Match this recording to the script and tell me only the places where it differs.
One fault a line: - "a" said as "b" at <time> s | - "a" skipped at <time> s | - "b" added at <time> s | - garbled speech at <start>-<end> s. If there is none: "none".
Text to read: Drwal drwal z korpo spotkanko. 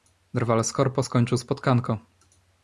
- "drwal" skipped at 0.6 s
- "skończył" added at 1.0 s